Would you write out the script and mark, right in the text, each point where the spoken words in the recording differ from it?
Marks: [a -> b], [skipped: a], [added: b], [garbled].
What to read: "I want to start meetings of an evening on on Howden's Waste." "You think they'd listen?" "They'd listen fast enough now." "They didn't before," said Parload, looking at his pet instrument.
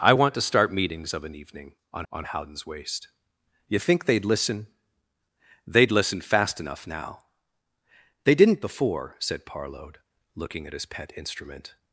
"I want to start meetings of an evening on on Howden's Waste." "You think they'd listen?" "They'd listen fast enough now." "They didn't before," said Parload, looking at his pet instrument.